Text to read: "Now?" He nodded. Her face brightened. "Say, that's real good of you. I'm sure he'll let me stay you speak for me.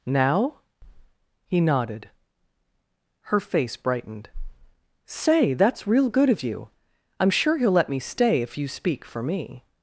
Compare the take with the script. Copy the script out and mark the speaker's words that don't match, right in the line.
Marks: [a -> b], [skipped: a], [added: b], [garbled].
"Now?" He nodded. Her face brightened. "Say, that's real good of you. I'm sure he'll let me stay [added: if] you speak for me.